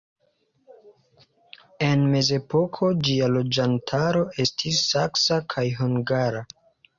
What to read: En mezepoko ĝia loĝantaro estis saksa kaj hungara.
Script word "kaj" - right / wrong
right